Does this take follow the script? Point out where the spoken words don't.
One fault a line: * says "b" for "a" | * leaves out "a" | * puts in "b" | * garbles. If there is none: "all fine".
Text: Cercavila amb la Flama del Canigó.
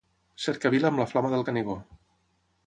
all fine